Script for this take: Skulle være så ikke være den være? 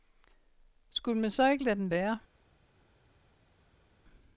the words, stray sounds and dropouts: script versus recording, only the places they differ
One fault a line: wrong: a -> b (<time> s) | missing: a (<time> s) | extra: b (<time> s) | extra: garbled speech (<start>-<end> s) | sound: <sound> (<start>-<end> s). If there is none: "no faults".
wrong: være -> man (1.2 s)
wrong: være -> lade (1.6 s)